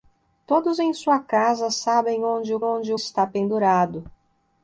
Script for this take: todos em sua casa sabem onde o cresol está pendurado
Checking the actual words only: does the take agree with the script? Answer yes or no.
no